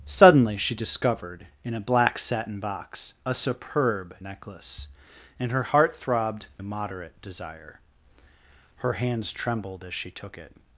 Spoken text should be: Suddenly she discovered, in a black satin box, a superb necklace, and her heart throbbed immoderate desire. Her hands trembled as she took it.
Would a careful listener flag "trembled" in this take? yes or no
no